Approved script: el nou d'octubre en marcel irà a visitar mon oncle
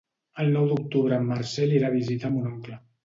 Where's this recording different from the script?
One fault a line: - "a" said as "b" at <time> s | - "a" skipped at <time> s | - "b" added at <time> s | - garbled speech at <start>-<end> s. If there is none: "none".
none